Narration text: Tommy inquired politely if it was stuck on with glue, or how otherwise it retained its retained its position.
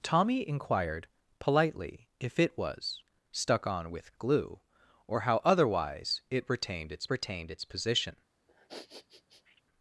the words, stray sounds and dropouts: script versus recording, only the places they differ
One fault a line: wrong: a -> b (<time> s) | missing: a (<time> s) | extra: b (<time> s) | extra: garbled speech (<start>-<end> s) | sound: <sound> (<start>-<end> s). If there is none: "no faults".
sound: sniff (8.5-9.6 s)